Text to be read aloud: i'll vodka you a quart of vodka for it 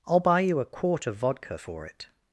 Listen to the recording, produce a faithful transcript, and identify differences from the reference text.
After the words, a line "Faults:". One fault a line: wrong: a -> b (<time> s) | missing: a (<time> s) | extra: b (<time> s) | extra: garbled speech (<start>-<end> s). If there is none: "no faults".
i'll buy you a quart of vodka for it
Faults:
wrong: vodka -> buy (0.2 s)